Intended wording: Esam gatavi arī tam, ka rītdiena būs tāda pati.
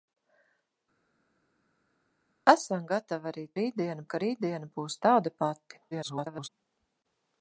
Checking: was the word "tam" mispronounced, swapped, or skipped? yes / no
yes